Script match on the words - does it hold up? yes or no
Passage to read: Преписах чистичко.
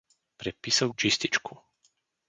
yes